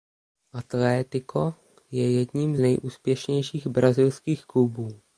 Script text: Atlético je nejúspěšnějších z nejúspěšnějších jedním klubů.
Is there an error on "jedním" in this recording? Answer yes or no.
yes